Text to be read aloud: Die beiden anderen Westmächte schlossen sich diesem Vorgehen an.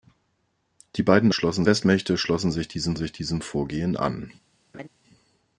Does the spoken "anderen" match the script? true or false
false